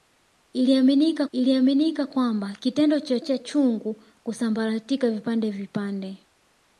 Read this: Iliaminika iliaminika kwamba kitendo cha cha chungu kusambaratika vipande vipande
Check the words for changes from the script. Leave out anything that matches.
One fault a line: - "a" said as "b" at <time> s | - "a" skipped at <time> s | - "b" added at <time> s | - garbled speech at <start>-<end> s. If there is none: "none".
none